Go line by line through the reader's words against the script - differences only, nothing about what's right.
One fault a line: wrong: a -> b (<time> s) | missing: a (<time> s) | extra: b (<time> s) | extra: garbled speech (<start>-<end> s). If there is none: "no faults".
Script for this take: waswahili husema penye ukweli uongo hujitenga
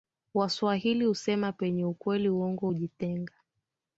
no faults